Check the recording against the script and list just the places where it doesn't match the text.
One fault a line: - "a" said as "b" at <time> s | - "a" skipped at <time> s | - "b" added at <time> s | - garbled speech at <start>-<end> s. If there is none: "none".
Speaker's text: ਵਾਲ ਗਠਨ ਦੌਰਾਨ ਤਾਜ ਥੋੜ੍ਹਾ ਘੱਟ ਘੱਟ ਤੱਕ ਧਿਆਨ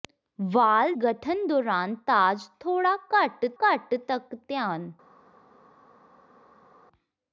none